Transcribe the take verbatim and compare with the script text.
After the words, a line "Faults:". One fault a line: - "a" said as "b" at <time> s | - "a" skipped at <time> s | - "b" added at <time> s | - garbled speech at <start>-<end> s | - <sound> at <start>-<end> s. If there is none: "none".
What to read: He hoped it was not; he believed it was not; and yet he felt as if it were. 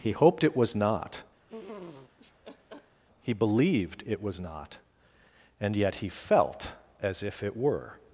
He hoped it was not; he believed it was not; and yet he felt as if it were.
Faults:
- laugh at 1.5-3.0 s